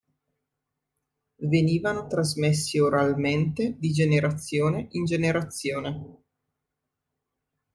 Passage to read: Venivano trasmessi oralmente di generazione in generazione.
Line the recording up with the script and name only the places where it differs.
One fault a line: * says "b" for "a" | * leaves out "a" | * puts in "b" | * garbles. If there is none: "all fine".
all fine